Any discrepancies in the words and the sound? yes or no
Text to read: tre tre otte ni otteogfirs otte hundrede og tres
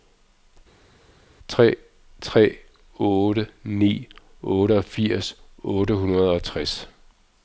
no